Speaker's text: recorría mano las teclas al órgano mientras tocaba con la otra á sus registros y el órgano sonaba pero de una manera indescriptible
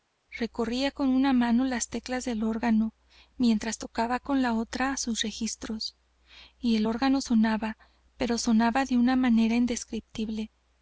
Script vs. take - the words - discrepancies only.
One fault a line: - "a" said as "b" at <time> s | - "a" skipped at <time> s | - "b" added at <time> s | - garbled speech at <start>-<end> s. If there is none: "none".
- "con una" added at 0.9 s
- "al" said as "del" at 2.2 s
- "sonaba" added at 8.4 s